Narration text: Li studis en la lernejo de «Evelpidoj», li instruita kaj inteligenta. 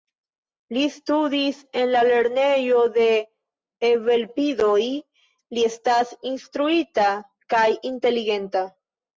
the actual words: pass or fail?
fail